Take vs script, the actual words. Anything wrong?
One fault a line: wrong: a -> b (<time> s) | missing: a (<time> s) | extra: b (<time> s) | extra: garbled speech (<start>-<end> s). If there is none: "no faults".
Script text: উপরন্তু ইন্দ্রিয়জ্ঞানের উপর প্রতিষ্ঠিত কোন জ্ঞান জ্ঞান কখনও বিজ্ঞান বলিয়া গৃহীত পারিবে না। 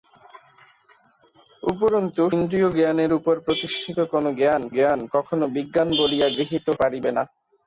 no faults